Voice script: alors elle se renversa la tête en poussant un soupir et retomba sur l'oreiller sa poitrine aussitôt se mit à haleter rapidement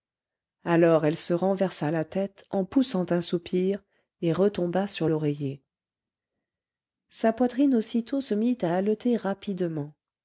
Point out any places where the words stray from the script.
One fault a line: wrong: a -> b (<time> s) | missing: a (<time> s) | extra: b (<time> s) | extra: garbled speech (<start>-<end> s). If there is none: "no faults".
no faults